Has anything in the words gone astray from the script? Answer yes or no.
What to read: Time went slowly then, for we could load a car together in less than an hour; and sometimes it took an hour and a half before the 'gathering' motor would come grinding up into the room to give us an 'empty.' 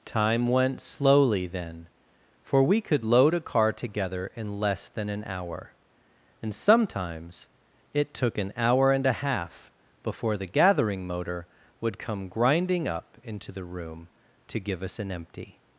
no